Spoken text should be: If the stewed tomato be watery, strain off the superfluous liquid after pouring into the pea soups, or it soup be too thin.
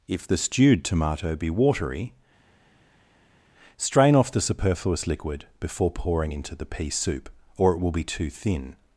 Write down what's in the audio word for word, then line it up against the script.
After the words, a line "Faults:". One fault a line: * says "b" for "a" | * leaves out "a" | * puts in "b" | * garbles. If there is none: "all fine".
If the stewed tomato be watery, strain off the superfluous liquid before pouring into the pea soup, or it will be too thin.
Faults:
* says "before" for "after"
* says "soup" for "soups"
* says "will" for "soup"